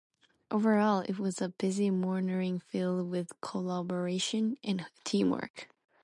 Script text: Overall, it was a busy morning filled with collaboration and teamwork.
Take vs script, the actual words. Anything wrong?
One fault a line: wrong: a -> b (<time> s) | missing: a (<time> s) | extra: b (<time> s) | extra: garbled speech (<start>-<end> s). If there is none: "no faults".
no faults